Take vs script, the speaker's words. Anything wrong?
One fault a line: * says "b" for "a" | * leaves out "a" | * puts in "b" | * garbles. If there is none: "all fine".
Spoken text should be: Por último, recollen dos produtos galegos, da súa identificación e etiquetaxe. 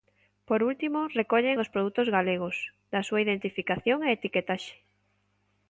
all fine